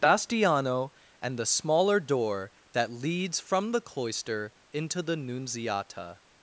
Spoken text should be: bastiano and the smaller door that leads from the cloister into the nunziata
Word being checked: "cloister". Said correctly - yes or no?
yes